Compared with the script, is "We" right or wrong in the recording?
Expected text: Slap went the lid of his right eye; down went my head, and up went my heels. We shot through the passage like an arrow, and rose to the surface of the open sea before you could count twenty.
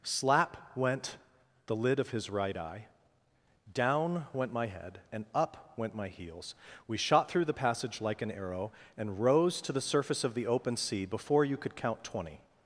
right